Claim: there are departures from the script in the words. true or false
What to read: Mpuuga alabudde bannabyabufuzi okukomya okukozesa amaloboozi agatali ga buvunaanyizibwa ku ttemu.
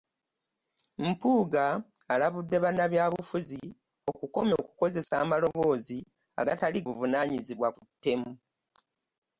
true